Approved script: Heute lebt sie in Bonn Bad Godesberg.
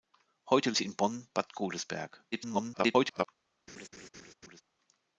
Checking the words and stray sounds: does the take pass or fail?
fail